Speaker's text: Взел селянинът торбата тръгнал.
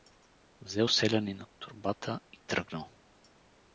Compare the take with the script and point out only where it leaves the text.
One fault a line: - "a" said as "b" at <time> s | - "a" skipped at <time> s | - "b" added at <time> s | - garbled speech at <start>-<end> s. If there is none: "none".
- "и" added at 2.3 s